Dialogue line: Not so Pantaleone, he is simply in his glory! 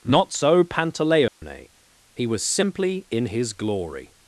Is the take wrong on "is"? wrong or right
wrong